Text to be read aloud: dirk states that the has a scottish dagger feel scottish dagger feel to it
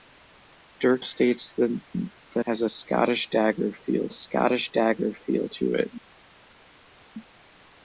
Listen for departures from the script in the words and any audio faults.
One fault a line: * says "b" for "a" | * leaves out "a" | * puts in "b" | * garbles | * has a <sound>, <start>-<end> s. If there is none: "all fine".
all fine